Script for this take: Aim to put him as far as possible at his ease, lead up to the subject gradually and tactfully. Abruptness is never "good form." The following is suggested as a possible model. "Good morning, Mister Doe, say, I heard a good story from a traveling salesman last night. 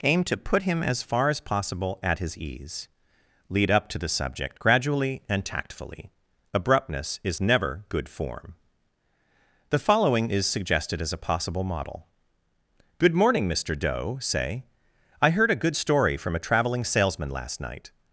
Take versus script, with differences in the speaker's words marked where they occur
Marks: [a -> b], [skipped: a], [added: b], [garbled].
Aim to put him as far as possible at his ease, lead up to the subject gradually and tactfully. Abruptness is never "good form." The following is suggested as a possible model. "Good morning, Mister Doe, say, I heard a good story from a traveling salesman last night.